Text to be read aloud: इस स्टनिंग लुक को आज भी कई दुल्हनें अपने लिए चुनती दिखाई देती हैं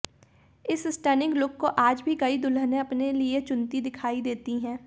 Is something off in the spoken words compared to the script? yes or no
no